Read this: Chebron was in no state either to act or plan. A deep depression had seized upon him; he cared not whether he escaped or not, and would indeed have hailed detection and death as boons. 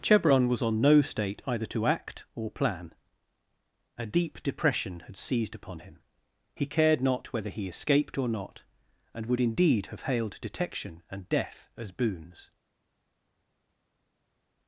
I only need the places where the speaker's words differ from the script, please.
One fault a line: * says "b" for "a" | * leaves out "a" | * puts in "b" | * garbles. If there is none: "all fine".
* says "on" for "in"